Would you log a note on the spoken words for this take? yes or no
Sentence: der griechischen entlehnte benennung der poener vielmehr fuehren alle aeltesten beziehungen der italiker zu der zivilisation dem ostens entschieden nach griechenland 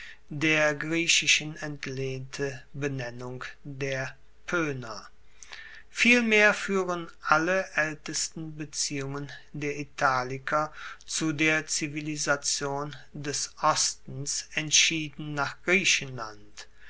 yes